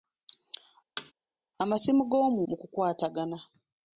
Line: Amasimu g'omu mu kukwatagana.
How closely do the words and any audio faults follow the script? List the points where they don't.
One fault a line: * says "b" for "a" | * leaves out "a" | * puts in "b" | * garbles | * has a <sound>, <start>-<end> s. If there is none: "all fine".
* has a thud, 1.0-1.1 s